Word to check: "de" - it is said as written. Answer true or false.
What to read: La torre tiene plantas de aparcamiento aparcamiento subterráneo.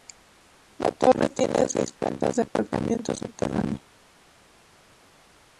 true